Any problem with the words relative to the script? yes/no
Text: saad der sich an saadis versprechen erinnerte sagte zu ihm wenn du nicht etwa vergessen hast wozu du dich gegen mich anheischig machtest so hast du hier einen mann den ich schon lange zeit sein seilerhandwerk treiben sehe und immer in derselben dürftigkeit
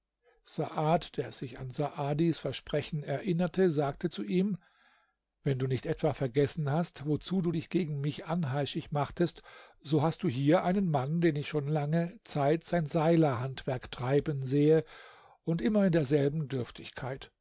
no